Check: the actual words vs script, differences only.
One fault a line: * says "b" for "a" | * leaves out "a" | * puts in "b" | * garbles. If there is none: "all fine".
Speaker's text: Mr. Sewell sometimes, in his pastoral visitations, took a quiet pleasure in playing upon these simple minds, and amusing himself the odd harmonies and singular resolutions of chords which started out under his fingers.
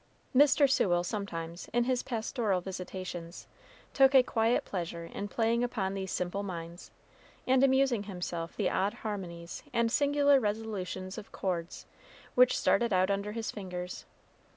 all fine